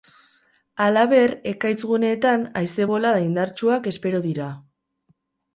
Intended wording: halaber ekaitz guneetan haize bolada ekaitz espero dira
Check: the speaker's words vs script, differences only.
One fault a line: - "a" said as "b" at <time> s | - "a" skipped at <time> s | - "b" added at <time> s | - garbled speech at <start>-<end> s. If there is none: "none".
- "ekaitz" said as "indartsuak" at 3.3 s